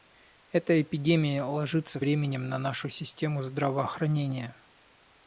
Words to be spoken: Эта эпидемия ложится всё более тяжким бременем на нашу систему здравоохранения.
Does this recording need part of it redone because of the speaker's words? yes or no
yes